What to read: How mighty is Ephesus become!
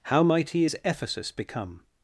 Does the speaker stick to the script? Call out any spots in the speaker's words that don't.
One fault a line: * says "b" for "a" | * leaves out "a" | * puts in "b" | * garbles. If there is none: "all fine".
all fine